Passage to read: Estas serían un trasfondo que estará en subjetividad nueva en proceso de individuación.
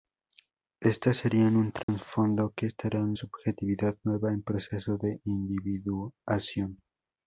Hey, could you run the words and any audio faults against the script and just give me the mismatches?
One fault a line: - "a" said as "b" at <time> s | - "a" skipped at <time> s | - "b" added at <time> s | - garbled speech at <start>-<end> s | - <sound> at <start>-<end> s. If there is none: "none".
- dropout at 1.8-1.9 s